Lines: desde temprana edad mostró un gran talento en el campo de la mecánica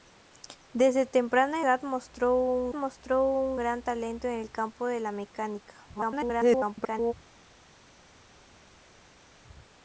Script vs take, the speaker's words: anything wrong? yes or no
yes